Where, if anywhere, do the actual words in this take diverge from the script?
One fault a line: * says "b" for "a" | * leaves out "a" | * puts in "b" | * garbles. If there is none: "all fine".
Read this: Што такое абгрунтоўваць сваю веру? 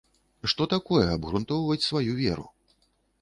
all fine